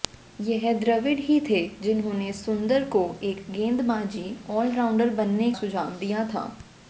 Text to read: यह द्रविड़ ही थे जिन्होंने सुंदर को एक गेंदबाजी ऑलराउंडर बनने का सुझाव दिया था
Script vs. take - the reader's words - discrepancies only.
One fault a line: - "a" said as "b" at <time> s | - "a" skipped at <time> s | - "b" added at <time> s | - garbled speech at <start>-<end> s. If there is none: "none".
- "का" skipped at 5.5 s